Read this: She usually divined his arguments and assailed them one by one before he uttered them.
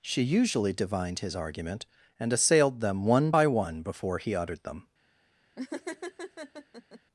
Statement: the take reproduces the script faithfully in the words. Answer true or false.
false